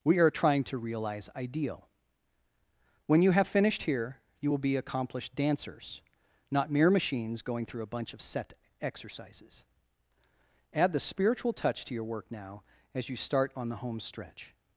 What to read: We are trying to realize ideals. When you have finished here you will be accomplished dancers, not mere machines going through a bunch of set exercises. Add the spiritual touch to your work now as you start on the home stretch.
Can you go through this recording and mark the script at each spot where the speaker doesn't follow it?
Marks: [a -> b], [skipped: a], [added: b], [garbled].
We are trying to realize [ideals. -> ideal] When you have finished here you will be accomplished dancers, not mere machines going through a bunch of set exercises. Add the spiritual touch to your work now as you start on the home stretch.